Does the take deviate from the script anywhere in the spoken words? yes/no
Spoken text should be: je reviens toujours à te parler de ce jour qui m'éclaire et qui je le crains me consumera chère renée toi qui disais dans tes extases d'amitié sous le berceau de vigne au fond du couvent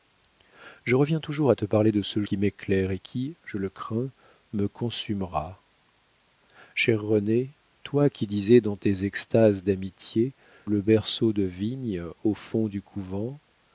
yes